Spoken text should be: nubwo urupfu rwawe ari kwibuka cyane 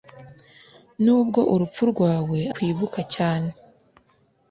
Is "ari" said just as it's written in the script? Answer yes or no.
no